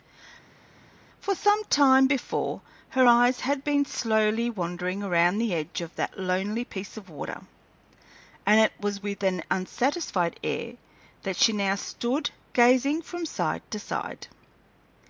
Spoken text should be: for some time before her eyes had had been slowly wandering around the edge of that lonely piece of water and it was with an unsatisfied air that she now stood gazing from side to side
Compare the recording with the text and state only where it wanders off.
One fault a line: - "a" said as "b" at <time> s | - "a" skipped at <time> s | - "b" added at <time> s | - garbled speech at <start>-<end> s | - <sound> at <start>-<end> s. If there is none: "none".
- "had" skipped at 3.6 s